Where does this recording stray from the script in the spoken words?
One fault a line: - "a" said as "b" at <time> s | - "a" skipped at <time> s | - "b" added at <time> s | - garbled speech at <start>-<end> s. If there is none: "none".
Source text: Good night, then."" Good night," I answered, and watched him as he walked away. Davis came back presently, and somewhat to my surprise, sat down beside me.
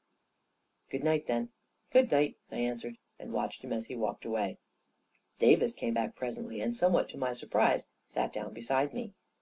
none